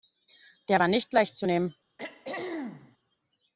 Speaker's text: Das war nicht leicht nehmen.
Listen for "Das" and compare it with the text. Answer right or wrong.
wrong